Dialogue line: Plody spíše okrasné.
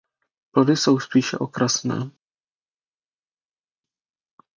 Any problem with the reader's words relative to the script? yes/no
yes